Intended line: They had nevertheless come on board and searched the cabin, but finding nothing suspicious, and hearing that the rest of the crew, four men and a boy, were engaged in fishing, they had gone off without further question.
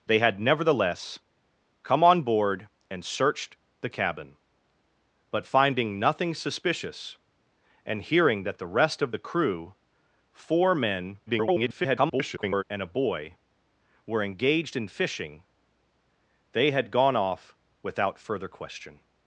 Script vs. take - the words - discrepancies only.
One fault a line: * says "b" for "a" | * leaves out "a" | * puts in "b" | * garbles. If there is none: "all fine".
* garbles